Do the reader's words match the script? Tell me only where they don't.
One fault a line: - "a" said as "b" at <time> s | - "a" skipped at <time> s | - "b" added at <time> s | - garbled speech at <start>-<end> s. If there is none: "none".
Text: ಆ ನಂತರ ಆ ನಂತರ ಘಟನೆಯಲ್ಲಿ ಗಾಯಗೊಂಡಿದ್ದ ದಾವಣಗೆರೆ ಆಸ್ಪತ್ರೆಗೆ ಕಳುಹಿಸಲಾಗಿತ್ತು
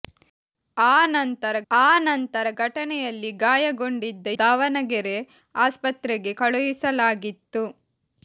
none